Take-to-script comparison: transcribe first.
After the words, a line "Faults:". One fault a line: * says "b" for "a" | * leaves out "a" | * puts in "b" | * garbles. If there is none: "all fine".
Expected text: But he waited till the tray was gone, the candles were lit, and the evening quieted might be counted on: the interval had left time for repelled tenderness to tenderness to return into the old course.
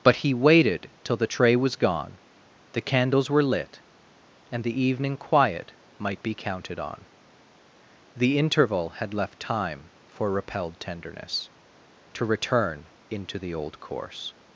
But he waited till the tray was gone, the candles were lit, and the evening quiet might be counted on: the interval had left time for repelled tenderness to return into the old course.
Faults:
* says "quiet" for "quieted"
* leaves out "tenderness to"